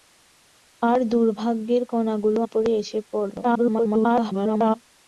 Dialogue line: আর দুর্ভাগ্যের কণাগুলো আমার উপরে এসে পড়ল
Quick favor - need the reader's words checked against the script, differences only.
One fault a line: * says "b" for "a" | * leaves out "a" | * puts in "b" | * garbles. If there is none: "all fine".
* leaves out "আমার"
* garbles